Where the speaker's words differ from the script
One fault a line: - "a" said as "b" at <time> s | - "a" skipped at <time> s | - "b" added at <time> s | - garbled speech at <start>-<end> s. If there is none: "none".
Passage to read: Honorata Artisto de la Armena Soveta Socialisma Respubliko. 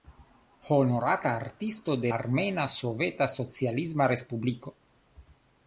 - "la" skipped at 2.1 s